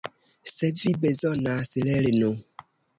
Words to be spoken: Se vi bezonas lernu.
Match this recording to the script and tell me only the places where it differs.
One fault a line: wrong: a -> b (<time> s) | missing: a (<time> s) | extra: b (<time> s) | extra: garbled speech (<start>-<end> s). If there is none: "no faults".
no faults